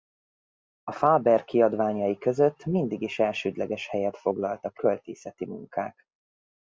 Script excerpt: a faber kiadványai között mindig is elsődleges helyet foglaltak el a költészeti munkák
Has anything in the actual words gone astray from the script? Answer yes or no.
yes